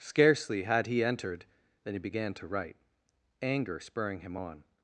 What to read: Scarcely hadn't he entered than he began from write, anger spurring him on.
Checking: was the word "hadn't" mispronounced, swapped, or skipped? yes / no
yes